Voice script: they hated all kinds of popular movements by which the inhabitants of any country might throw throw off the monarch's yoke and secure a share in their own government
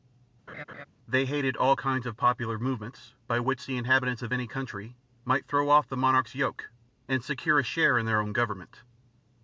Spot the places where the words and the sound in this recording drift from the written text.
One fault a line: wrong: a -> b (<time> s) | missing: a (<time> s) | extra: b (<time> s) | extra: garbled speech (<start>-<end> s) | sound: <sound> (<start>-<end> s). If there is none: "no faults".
sound: laugh (0.5-0.9 s)
missing: throw (5.7 s)